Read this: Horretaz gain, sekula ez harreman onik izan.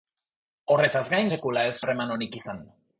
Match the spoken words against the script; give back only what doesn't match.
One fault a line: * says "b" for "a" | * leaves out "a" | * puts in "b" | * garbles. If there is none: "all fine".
all fine